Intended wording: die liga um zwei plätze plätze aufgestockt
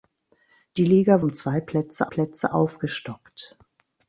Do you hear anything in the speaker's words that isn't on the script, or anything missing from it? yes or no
no